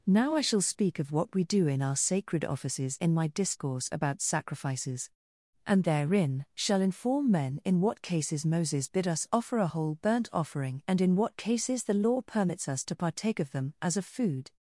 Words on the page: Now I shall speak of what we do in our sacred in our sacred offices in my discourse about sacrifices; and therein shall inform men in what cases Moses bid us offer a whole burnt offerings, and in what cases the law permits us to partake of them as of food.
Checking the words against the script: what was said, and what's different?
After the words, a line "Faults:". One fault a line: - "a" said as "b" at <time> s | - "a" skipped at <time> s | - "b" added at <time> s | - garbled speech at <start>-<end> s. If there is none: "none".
Now I shall speak of what we do in our sacred offices in my discourse about sacrifices; and therein shall inform men in what cases Moses bid us offer a whole burnt offering, and in what cases the law permits us to partake of them as of food.
Faults:
- "in our sacred" skipped at 2.4 s
- "offerings" said as "offering" at 10.3 s